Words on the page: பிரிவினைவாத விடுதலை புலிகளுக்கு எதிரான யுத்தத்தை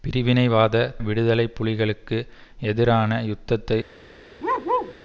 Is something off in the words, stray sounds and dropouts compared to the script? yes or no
yes